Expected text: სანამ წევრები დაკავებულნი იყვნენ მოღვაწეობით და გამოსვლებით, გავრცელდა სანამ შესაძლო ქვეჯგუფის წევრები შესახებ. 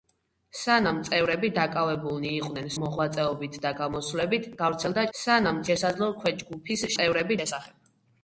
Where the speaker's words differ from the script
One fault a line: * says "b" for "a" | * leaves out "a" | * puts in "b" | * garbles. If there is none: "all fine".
all fine